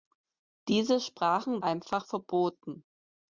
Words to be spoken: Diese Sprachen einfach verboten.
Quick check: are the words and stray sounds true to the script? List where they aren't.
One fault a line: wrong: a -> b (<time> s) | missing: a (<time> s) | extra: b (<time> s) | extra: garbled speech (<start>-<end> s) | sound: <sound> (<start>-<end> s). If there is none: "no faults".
no faults